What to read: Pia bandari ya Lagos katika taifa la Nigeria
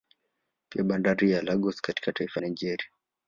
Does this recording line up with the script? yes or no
no